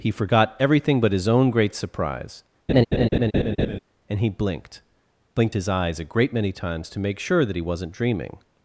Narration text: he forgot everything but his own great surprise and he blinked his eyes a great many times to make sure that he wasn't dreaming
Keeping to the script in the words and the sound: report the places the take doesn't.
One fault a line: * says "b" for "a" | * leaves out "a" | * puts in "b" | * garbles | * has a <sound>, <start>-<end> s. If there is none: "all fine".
* has a laugh, 2.7-3.8 s
* puts in "blinked"